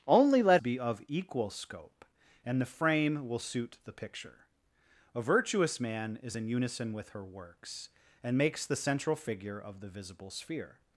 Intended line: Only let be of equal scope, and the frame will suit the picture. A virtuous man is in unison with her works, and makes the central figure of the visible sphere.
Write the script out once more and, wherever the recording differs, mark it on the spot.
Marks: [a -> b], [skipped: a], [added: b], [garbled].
Only let be of equal scope, and the frame will suit the picture. A virtuous man is in unison with her works, and makes the central figure of the visible sphere.